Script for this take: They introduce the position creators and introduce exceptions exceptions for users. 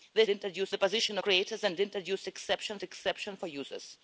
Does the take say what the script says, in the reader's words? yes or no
yes